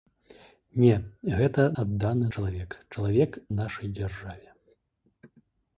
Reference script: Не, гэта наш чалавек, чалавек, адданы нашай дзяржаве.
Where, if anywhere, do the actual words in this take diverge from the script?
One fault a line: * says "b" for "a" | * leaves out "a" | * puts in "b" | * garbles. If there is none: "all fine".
* says "адданы" for "наш"
* leaves out "адданы"